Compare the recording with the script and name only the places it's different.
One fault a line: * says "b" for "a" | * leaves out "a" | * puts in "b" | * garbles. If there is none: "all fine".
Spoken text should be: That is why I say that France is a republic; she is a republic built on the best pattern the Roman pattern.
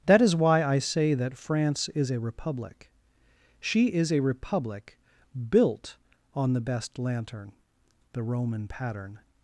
* says "lantern" for "pattern"